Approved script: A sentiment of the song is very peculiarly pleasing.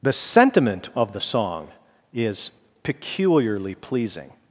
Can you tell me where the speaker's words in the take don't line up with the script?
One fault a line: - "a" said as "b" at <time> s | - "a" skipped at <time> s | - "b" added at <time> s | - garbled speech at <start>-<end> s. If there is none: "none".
- "A" said as "The" at 0.0 s
- "very" skipped at 2.5 s